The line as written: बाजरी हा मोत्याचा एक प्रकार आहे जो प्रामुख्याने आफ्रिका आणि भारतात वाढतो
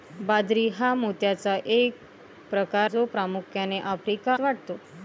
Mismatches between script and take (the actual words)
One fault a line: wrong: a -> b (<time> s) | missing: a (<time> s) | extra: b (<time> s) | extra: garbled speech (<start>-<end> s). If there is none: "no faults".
missing: आहे (2.9 s)
missing: आणि भारतात (4.3 s)